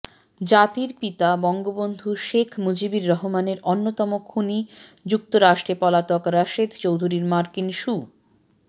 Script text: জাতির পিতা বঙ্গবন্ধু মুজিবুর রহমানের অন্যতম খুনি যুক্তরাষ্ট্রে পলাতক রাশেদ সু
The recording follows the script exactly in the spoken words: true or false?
false